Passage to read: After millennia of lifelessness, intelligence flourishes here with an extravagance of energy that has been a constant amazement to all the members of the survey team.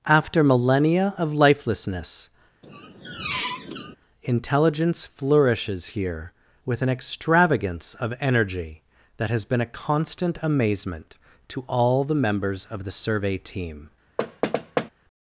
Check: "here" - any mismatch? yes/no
no